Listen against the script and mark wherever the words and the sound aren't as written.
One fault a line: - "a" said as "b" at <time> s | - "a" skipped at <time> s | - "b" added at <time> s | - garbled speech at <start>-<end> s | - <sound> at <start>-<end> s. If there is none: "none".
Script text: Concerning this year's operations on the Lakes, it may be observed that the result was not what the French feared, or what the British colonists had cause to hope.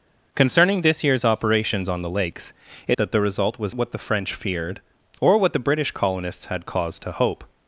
- "may be observed" skipped at 3.0 s
- "not" skipped at 3.7 s